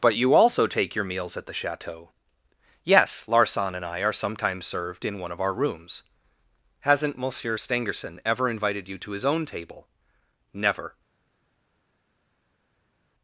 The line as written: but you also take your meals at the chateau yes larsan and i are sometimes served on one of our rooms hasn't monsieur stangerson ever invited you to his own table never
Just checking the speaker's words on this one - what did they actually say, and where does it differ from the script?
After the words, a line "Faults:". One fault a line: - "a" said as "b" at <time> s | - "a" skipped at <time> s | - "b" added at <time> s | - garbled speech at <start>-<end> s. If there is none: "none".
but you also take your meals at the chateau yes larsan and i are sometimes served in one of our rooms hasn't monsieur stangerson ever invited you to his own table never
Faults:
- "on" said as "in" at 5.0 s